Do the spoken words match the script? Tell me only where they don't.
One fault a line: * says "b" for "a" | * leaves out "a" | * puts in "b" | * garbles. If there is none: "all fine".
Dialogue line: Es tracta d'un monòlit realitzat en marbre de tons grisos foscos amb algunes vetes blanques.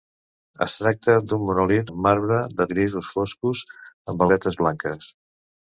* leaves out "realitzat"
* leaves out "tons"
* leaves out "algunes"